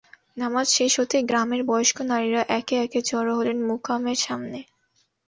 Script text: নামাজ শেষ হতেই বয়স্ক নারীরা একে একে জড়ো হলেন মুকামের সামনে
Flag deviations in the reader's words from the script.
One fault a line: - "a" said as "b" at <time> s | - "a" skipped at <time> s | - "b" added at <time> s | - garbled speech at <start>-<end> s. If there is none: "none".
- "গ্রামের" added at 1.3 s